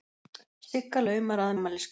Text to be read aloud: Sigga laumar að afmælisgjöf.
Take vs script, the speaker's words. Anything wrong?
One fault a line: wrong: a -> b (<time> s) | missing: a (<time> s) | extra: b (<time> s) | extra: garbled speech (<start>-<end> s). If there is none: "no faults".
no faults